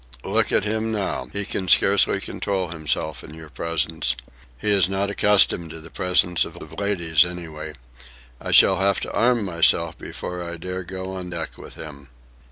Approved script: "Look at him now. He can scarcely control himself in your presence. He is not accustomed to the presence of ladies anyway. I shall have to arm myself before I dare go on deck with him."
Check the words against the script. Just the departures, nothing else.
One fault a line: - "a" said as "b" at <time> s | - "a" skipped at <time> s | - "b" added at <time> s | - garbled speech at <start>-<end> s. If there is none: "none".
- "of" added at 6.6 s